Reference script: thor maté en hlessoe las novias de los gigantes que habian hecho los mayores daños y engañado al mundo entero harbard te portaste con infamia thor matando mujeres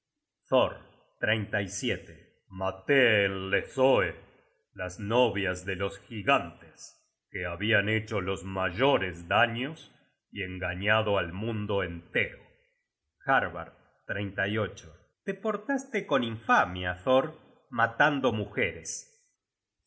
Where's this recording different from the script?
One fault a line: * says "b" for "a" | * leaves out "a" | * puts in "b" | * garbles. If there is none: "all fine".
all fine